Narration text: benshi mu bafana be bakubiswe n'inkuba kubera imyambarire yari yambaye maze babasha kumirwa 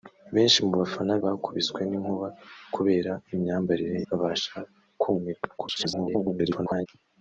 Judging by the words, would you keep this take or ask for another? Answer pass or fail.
fail